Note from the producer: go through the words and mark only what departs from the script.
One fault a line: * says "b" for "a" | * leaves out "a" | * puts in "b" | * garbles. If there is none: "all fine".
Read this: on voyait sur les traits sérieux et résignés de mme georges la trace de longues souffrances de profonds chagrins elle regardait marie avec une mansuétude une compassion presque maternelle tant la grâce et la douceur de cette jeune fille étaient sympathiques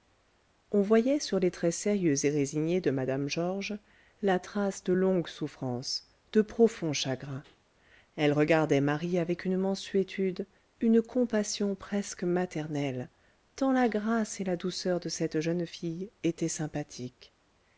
all fine